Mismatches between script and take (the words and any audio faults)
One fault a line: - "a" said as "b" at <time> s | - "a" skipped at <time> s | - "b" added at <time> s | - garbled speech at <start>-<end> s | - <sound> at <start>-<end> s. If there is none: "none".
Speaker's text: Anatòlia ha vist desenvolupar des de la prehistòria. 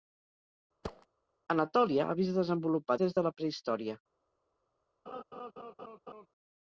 - thud at 0.8-1.1 s
- laugh at 5.1-6.3 s